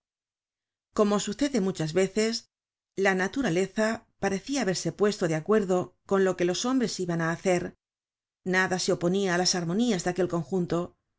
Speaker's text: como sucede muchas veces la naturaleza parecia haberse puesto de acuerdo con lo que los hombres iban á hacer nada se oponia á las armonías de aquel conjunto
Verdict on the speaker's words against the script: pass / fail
pass